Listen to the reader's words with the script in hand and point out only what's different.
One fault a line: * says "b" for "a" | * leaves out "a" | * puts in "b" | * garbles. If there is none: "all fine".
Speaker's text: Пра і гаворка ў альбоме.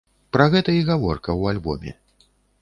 * puts in "гэта"